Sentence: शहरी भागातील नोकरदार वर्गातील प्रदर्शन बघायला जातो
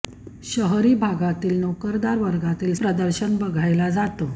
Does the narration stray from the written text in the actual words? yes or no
no